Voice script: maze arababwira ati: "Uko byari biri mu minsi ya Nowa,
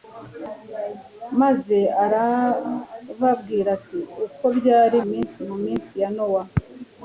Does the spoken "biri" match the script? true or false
false